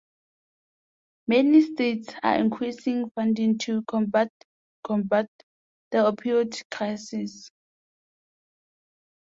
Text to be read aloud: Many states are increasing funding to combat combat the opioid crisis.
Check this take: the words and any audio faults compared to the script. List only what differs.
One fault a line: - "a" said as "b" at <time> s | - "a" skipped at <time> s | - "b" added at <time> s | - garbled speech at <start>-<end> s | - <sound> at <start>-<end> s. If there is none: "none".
none